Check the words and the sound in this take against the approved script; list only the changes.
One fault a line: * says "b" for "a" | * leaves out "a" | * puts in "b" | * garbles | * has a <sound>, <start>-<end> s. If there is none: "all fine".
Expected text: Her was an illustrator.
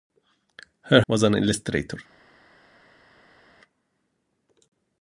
all fine